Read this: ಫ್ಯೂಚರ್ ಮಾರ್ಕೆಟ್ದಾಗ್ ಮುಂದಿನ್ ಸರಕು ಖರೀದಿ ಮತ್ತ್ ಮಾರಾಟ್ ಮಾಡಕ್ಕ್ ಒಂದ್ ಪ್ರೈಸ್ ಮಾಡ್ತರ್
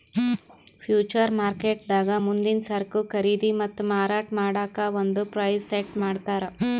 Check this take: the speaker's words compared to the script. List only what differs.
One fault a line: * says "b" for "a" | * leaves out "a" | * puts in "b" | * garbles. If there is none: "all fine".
* puts in "ಸೆಟ್"